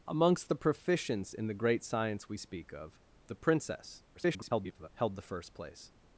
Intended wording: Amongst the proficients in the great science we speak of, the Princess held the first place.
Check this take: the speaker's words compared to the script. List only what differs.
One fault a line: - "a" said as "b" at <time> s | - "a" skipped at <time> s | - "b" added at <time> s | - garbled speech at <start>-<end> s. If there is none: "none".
- garbled speech at 4.1-4.9 s